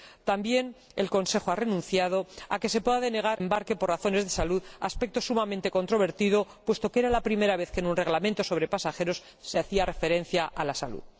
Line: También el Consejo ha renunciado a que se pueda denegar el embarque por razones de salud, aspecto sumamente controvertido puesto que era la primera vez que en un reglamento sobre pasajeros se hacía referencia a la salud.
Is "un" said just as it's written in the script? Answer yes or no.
yes